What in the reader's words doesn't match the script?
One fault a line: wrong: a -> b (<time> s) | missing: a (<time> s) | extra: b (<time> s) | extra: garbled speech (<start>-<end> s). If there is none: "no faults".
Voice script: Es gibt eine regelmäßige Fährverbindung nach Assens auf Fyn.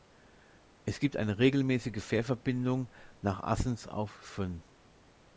no faults